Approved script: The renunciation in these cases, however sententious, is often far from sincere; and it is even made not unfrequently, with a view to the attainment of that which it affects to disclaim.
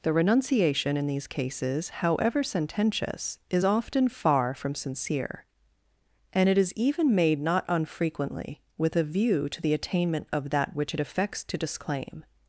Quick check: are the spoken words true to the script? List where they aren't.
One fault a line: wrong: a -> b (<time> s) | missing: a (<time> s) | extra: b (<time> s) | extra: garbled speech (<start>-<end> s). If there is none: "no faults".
no faults